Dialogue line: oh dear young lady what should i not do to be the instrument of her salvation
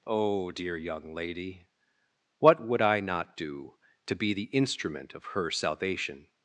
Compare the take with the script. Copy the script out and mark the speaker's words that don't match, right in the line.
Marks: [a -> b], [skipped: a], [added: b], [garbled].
oh dear young lady what [should -> would] i not do to be the instrument of her salvation